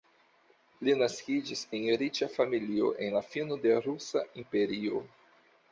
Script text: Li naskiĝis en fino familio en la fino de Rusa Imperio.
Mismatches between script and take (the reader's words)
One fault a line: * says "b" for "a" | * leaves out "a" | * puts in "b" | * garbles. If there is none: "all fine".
* says "riĉa" for "fino"